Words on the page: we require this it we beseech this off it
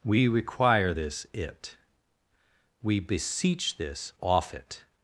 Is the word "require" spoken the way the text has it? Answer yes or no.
yes